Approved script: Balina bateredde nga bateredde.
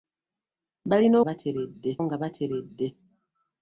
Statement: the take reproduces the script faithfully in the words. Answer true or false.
true